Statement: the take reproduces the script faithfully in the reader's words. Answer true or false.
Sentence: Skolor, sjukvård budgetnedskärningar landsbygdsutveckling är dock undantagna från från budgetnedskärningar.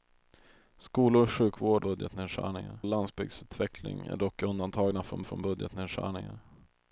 true